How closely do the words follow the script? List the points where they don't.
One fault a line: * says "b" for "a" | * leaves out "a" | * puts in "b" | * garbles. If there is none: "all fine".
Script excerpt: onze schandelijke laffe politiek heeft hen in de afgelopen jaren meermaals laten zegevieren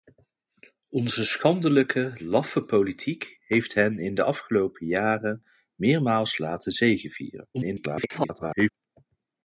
* garbles